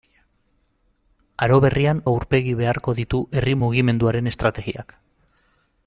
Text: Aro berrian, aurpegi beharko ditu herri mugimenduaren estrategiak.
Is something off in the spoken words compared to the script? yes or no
no